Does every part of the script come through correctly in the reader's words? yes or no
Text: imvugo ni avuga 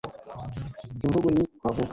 yes